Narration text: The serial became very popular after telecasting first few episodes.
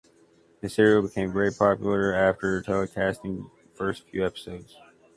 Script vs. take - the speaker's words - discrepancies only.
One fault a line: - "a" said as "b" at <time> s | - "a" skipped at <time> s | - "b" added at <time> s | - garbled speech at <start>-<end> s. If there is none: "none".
none